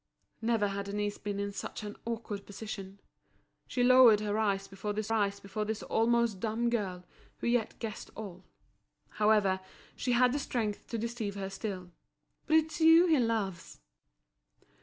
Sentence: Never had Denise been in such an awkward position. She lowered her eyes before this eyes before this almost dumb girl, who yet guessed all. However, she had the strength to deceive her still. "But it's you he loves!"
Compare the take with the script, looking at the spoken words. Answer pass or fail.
pass